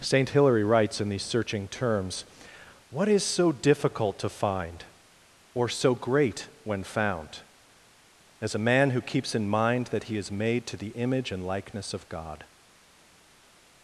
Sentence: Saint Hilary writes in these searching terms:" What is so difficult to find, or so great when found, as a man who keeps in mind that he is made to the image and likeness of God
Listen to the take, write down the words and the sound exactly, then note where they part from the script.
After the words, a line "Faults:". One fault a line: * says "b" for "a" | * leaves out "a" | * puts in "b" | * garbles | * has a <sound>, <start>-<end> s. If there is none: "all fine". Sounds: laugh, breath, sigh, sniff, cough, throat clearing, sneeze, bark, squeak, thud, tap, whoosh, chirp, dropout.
Saint Hilary writes in these searching terms:" What is so difficult to find, or so great when found, as a man who keeps in mind that he is made to the image and likeness of God
Faults:
all fine